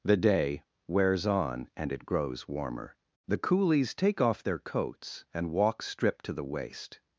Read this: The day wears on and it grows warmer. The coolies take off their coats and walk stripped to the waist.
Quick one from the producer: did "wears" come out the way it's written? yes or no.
yes